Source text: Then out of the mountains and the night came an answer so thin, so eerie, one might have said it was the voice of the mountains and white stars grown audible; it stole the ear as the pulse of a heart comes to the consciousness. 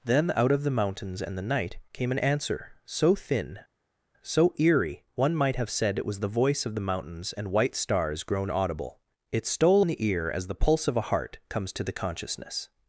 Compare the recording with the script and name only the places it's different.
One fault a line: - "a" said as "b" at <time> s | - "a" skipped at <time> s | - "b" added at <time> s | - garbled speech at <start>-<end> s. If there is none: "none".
none